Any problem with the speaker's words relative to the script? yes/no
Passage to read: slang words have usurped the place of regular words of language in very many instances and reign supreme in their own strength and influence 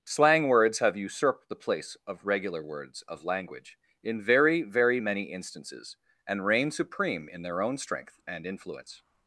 yes